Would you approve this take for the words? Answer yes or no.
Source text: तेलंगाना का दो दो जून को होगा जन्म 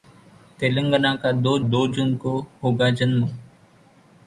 yes